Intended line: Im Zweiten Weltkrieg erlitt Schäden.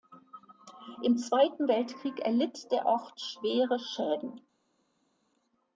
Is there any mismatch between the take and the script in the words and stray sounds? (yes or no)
yes